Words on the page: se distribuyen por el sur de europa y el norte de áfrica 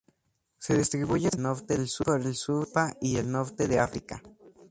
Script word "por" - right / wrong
wrong